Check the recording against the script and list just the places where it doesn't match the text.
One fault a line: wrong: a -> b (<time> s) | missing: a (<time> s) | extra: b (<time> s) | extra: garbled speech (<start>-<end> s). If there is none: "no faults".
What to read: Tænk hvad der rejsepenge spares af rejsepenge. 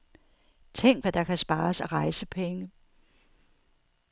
wrong: rejsepenge -> kan (1.2 s)